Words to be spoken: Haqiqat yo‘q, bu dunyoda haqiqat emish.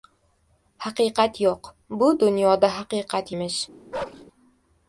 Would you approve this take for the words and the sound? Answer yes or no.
no